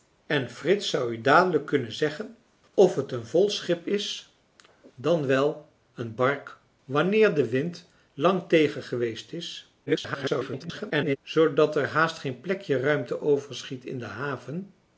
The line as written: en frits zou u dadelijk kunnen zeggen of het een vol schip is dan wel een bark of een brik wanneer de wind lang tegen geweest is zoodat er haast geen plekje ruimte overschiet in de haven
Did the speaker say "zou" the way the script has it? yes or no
yes